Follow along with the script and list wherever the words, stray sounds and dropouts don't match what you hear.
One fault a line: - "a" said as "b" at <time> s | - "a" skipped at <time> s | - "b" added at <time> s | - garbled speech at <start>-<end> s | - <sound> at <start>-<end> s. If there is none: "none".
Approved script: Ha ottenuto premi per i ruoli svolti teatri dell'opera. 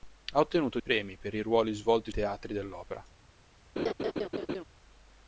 - laugh at 3.8-4.6 s